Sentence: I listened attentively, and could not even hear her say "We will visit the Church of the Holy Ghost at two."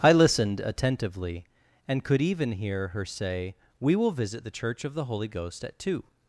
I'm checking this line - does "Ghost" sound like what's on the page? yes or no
yes